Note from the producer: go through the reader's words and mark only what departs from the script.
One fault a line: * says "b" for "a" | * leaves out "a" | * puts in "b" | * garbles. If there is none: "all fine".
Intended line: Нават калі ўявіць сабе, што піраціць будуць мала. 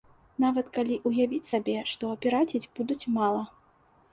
all fine